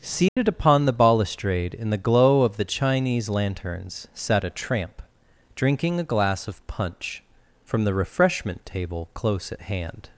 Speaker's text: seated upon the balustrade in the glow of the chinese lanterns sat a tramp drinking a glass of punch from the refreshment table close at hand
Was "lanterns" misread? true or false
false